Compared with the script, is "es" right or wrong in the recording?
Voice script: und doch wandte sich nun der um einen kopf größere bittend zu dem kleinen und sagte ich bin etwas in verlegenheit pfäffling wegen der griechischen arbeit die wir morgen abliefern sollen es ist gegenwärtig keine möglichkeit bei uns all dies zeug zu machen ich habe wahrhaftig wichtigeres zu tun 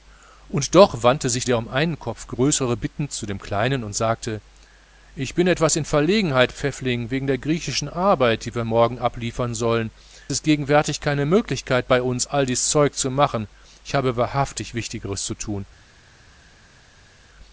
wrong